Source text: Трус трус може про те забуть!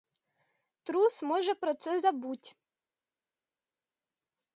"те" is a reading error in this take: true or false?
true